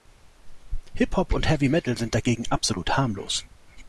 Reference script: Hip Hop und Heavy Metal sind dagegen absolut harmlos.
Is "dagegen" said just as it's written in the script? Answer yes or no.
yes